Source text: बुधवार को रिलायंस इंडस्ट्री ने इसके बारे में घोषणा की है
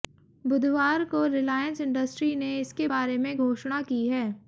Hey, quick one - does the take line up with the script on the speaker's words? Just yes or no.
yes